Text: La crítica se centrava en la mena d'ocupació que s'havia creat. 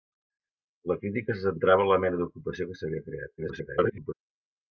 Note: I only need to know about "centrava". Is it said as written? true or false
true